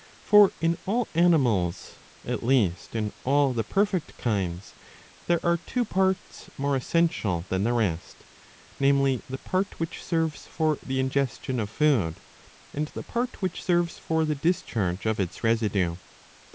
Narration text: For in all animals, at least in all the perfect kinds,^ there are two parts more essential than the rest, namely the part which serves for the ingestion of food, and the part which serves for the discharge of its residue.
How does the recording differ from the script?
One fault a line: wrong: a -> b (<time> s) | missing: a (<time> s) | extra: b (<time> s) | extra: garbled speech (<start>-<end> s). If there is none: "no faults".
no faults